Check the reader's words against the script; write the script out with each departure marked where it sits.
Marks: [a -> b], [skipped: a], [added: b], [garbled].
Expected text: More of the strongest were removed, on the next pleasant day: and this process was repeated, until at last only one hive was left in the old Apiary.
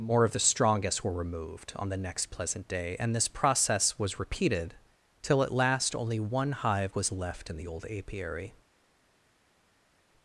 More of the strongest were removed, on the next pleasant day: and this process was repeated, [until -> till] at last only one hive was left in the old Apiary.